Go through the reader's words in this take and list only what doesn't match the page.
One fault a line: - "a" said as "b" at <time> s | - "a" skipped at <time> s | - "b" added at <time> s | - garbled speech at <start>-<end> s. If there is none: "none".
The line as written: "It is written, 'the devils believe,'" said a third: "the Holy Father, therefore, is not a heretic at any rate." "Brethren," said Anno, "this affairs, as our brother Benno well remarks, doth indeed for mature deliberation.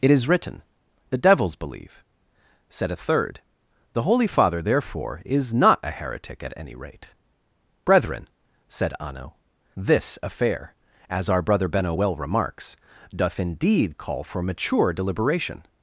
- "affairs" said as "affair" at 10.2 s
- "call" added at 14.0 s